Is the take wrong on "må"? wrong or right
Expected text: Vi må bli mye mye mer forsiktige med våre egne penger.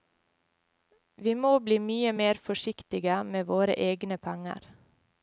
right